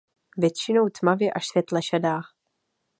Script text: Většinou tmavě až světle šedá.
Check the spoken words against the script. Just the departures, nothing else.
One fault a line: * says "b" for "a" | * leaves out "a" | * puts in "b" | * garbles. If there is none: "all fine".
all fine